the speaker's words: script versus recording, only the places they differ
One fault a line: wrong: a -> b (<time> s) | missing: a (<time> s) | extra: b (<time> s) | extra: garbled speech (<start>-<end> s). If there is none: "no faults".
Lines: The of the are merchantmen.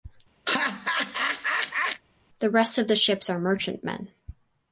extra: rest (2.5 s)
extra: ships (2.9 s)